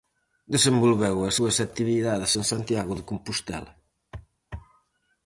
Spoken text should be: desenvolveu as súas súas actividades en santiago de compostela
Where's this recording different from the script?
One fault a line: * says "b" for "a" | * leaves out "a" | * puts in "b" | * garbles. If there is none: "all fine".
* leaves out "súas"